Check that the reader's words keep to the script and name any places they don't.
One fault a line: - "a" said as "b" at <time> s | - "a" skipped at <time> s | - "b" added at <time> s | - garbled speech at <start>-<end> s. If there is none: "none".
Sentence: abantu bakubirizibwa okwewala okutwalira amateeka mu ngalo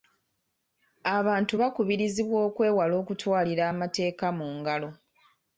none